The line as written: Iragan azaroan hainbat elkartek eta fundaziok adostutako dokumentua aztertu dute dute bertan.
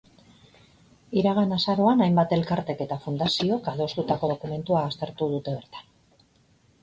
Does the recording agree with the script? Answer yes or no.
no